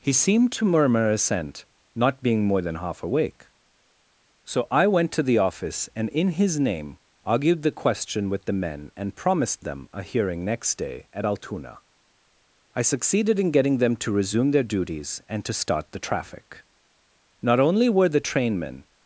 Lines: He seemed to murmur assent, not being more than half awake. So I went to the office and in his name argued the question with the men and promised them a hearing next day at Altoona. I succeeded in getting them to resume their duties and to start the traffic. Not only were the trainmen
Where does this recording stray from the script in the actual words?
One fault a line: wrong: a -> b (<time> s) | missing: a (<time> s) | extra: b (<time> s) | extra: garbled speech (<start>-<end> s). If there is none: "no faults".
no faults